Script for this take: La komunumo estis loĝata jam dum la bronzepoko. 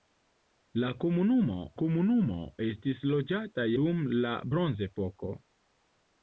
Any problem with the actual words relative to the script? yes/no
yes